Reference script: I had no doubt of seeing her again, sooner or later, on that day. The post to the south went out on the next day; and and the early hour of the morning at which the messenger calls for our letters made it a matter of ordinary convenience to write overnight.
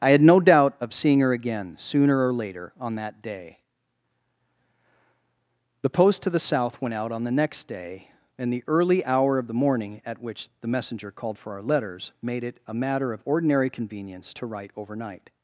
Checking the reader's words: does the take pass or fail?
fail